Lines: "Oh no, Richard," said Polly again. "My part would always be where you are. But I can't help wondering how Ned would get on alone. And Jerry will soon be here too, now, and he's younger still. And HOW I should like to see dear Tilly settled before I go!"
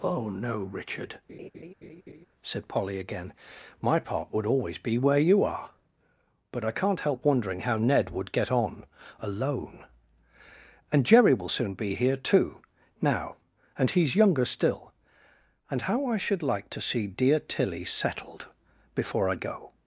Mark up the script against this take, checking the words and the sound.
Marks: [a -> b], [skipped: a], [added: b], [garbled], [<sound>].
"Oh no, Richard," [laugh] said Polly again. "My part would always be where you are. But I can't help wondering how Ned would get on alone. And Jerry will soon be here too, now, and he's younger still. And HOW I should like to see dear Tilly settled before I go!"